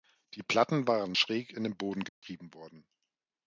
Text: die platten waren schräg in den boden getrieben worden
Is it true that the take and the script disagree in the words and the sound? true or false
true